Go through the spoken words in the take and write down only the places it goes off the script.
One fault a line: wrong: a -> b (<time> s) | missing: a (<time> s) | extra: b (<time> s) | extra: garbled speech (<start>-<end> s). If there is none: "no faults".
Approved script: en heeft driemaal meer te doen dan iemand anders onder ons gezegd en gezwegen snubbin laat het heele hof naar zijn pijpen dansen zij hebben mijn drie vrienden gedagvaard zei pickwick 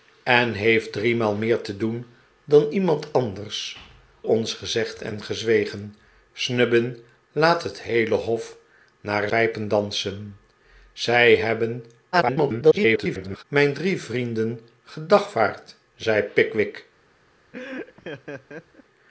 missing: onder (3.8 s)
missing: zijn (9.3 s)
extra: garbled speech (12.1-13.4 s)